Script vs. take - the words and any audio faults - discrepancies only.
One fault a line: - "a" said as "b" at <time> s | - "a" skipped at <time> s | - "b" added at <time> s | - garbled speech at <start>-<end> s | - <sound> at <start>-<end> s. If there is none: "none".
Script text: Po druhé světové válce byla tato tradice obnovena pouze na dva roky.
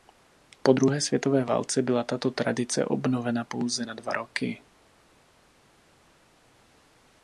none